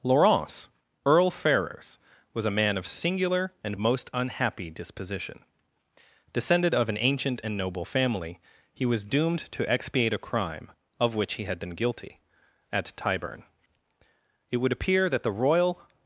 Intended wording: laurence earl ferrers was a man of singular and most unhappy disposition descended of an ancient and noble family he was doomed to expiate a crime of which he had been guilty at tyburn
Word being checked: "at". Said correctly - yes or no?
yes